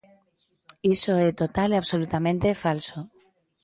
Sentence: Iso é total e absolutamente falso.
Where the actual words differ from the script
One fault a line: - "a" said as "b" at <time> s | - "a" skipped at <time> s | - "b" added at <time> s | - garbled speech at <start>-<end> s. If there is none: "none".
none